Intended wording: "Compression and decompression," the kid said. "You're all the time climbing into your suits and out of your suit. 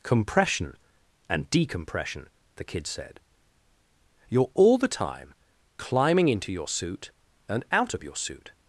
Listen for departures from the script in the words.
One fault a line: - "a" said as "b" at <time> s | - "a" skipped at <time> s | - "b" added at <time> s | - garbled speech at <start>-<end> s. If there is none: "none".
- "suits" said as "suit" at 6.7 s